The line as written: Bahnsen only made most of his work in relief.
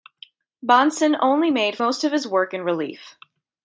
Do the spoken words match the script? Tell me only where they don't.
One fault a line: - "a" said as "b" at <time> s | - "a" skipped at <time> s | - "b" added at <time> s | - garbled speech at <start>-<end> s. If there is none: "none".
none